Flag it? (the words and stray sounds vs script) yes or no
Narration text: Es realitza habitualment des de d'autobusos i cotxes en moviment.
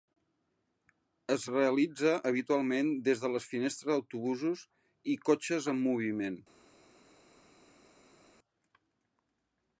yes